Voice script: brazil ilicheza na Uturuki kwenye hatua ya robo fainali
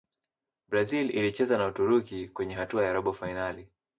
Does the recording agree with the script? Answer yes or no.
yes